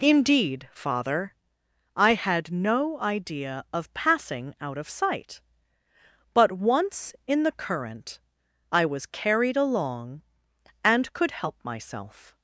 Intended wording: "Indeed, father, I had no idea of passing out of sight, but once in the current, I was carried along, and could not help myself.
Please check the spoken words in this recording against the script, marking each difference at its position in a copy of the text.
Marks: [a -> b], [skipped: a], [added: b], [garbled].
"Indeed, father, I had no idea of passing out of sight, but once in the current, I was carried along, and could [skipped: not] help myself.